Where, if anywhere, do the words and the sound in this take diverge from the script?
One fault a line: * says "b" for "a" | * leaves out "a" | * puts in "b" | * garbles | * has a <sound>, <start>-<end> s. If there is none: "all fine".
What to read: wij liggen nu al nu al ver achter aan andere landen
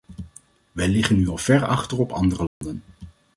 * leaves out "nu al"
* says "op" for "aan"
* has a dropout, 2.5-2.6 s